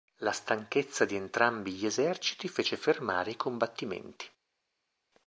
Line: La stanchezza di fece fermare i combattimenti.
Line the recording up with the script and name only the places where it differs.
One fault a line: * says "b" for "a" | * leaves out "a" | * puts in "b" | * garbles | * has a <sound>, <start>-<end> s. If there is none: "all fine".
* puts in "entrambi gli eserciti"